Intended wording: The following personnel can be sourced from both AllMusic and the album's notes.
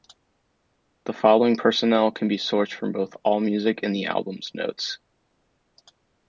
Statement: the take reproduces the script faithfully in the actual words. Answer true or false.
true